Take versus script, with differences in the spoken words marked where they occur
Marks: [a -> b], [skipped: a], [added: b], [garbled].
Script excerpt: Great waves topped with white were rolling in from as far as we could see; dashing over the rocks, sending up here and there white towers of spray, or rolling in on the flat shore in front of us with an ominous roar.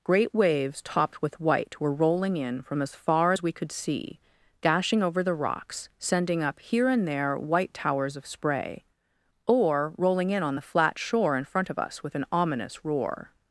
Great waves topped with white were rolling in from as far as we could see; dashing over the rocks, sending up here and there white towers of spray, or rolling in on the flat shore in front of us with an ominous roar.